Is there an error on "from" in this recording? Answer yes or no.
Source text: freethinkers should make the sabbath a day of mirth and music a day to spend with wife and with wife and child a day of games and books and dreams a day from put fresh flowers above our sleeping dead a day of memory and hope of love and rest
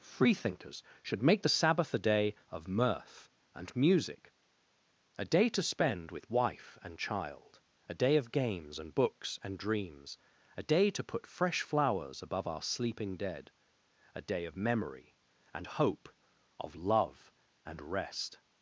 yes